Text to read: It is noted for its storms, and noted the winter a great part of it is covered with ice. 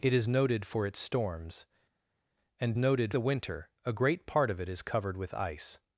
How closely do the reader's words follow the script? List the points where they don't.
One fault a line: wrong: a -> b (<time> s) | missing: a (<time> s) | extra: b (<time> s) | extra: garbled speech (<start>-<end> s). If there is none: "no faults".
no faults